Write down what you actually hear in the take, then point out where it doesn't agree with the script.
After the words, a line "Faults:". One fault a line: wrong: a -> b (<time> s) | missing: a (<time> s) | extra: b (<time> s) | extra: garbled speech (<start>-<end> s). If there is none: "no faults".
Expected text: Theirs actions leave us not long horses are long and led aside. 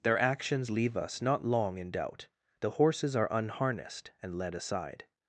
Their actions leave us not long in doubt. The horses are unharnessed and led aside.
Faults:
wrong: Theirs -> Their (0.0 s)
extra: in doubt The (1.8 s)
wrong: long -> unharnessed (3.3 s)